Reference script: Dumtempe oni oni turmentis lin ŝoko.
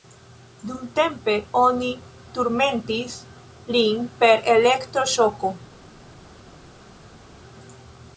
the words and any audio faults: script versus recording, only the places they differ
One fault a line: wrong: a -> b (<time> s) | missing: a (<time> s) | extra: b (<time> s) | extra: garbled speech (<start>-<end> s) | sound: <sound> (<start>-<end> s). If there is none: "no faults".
missing: oni (1.9 s)
extra: per elektro (4.2 s)